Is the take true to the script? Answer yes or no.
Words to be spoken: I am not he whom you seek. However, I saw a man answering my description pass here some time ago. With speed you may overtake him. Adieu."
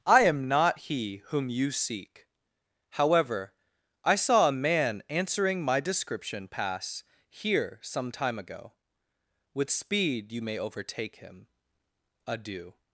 yes